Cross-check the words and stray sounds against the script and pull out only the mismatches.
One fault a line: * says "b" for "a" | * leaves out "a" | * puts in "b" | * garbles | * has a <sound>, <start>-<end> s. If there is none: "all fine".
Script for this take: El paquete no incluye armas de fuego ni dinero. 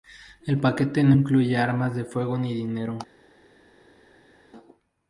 all fine